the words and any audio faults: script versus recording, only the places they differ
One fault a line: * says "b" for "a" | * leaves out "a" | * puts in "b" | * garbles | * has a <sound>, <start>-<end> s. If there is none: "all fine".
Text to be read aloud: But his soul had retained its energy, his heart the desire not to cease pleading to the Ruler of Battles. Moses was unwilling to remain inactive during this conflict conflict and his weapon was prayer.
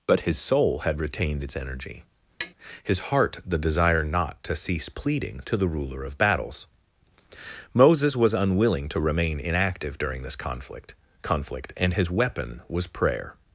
* has a tap, 2.4-2.5 s